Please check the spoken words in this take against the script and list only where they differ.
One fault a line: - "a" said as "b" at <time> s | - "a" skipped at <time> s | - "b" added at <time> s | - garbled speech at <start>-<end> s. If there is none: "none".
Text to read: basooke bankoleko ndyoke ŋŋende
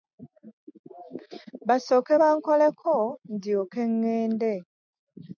none